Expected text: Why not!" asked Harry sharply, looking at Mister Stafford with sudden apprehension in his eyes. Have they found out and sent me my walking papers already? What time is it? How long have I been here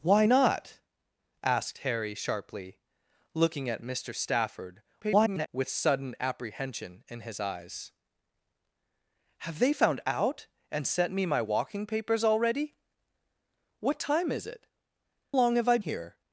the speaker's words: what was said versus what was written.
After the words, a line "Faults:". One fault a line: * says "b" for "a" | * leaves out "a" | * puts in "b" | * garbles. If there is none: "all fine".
Why not!" asked Harry sharply, looking at Mister Stafford [garbled] with sudden apprehension in his eyes. Have they found out and sent me my walking papers already? What time is it? Long have I here
Faults:
* garbles
* leaves out "How"
* leaves out "been"